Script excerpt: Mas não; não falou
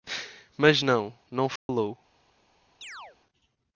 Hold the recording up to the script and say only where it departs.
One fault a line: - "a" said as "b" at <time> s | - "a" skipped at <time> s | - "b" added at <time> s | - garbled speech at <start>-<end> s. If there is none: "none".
none